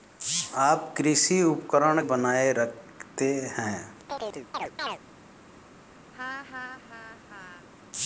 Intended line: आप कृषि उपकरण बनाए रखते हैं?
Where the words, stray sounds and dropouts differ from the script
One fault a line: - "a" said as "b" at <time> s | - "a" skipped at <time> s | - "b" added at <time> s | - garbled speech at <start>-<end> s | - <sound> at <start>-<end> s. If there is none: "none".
- chirp at 4.1-5.0 s
- laugh at 6.1-7.7 s